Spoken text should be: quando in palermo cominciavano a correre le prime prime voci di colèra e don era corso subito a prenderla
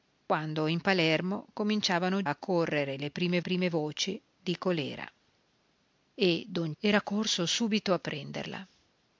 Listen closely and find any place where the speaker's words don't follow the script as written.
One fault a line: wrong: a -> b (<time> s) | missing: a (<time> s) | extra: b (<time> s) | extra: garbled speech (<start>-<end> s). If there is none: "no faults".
no faults